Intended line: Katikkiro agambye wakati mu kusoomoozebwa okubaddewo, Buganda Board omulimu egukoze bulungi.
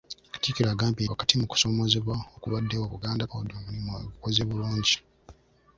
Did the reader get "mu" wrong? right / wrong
right